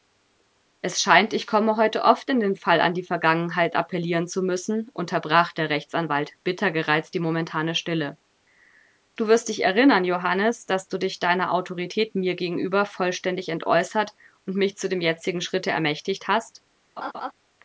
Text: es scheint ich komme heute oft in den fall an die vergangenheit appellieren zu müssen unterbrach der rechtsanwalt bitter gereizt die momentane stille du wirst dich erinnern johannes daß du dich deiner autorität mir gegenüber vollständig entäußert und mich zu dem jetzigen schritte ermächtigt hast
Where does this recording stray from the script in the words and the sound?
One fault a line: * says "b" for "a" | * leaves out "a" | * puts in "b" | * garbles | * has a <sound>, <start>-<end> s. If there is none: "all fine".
* has a laugh, 17.0-17.3 s